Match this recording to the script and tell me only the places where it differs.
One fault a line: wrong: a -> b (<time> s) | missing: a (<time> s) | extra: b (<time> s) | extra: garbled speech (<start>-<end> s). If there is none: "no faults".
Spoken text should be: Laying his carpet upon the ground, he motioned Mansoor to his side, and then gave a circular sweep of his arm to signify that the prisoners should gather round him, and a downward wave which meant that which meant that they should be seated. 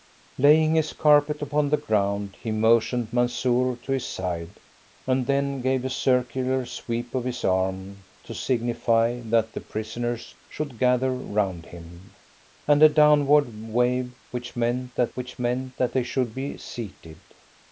no faults